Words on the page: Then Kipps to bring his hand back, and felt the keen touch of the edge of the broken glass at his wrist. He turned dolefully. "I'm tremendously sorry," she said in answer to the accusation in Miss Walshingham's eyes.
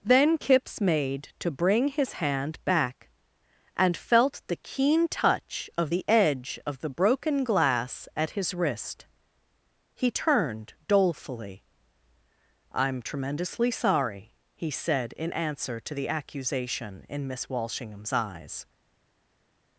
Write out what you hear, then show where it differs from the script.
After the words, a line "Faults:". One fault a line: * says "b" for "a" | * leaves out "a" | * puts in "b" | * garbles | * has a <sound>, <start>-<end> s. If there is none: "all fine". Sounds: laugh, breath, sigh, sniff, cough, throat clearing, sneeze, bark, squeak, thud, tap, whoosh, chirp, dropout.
Then Kipps made to bring his hand back, and felt the keen touch of the edge of the broken glass at his wrist. He turned dolefully. "I'm tremendously sorry," he said in answer to the accusation in Miss Walshingham's eyes.
Faults:
* puts in "made"
* says "he" for "she"